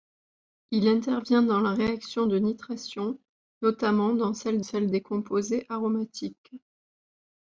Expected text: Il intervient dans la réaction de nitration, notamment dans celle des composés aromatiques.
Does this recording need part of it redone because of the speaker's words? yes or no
yes